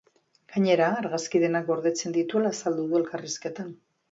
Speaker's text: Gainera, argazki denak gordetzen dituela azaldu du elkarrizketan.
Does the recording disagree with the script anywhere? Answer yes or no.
no